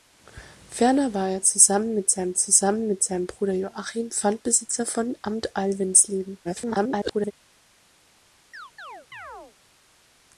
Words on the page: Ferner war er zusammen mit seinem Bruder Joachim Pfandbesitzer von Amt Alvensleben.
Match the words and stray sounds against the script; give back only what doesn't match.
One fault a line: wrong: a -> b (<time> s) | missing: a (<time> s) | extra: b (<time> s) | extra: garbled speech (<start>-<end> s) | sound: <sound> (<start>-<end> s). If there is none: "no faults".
extra: zusammen mit seinem (2.4 s)
extra: garbled speech (6.4-7.3 s)
sound: chirp (8.5-9.6 s)